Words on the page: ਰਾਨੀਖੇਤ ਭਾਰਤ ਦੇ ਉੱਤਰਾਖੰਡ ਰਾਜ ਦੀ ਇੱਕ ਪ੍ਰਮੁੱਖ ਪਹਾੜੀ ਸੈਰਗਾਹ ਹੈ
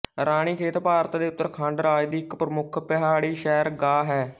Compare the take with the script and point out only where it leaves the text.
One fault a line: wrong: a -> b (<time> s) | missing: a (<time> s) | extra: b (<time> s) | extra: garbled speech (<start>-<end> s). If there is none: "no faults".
no faults